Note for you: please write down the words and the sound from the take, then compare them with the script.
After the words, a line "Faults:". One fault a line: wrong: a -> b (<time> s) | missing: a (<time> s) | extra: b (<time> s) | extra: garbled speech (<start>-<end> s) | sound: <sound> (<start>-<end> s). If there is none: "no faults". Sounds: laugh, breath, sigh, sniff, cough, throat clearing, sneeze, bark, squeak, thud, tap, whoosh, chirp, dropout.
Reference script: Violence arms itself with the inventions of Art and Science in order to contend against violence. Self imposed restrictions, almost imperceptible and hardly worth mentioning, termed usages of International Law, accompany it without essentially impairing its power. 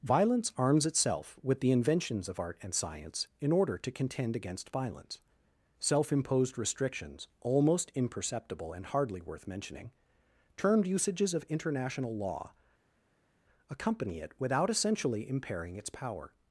Violence arms itself with the inventions of Art and Science in order to contend against violence. Self imposed restrictions, almost imperceptible and hardly worth mentioning, termed usages of International Law, accompany it without essentially impairing its power.
Faults:
no faults